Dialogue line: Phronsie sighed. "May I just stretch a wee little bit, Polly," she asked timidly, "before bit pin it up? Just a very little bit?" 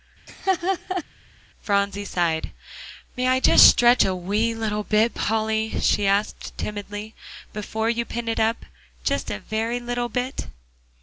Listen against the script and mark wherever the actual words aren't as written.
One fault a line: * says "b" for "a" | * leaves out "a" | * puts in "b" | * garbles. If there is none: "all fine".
* says "you" for "bit"